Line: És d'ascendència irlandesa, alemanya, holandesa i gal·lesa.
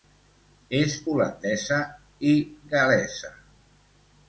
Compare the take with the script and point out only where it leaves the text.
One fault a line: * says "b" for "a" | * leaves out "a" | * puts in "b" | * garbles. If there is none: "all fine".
* leaves out "d'ascendència irlandesa alemanya"